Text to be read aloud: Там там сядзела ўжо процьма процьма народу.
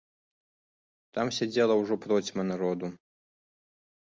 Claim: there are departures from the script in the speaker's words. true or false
true